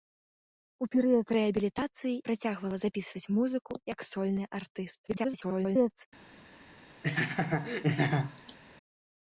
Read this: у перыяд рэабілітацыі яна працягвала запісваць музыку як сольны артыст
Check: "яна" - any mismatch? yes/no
yes